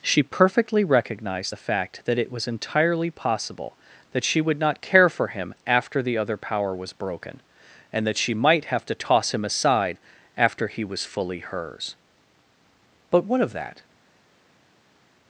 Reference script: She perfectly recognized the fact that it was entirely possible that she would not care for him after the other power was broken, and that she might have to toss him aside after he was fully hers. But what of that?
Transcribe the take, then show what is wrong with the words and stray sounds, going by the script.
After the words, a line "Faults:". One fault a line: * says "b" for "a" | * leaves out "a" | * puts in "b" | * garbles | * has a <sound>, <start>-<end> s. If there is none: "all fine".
She perfectly recognized the fact that it was entirely possible that she would not care for him after the other power was broken, and that she might have to toss him aside after he was fully hers. But what of that?
Faults:
all fine